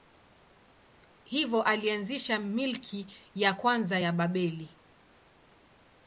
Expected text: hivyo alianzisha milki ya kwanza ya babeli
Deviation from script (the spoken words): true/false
false